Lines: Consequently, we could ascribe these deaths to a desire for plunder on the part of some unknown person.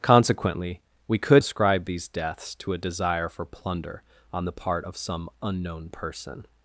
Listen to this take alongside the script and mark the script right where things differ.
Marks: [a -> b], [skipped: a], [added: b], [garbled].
Consequently, we could ascribe these deaths to a desire for plunder on the part of some unknown person.